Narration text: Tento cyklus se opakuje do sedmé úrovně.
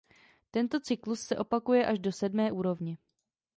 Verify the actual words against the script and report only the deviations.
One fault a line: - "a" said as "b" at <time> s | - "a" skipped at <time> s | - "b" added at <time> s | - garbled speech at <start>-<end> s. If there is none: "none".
- "až" added at 1.9 s